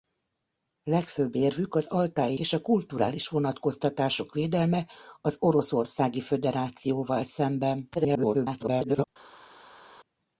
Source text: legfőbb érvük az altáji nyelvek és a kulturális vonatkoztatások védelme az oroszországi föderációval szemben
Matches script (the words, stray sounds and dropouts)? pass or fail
fail